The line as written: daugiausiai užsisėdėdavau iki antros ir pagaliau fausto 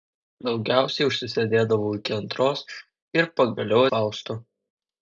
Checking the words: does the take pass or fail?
pass